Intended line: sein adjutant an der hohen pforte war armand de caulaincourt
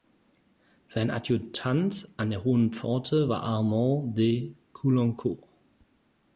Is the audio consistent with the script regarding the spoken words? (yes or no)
yes